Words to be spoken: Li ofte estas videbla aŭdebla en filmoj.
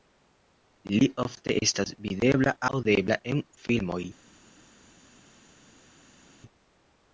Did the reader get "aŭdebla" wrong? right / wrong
right